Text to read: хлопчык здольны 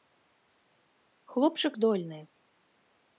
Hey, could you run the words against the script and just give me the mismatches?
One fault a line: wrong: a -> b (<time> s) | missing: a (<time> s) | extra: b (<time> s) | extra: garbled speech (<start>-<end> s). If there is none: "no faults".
no faults